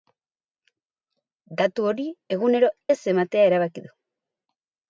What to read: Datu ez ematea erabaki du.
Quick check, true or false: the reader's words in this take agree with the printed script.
false